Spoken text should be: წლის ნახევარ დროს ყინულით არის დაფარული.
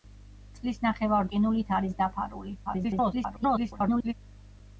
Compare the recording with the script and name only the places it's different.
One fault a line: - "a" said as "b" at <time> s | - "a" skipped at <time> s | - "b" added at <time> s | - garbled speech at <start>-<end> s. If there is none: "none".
- "დროს" skipped at 1.3 s
- garbled speech at 2.7-4.1 s